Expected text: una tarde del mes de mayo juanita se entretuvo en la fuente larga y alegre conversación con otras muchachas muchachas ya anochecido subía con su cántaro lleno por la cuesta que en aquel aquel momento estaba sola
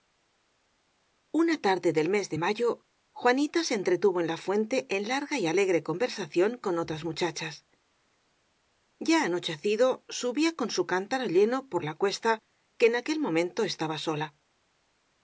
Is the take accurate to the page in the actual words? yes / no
no